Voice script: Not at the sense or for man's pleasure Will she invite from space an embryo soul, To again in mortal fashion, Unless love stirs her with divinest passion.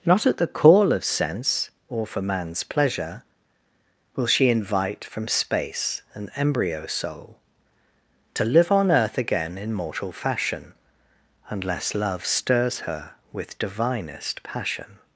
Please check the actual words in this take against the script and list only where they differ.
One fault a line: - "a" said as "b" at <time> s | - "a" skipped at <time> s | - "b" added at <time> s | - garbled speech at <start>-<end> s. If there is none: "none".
- "call of" added at 0.5 s
- "live on earth" added at 8.4 s